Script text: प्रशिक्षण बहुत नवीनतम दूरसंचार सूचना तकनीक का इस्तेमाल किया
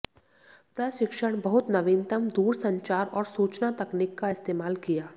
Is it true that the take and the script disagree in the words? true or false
true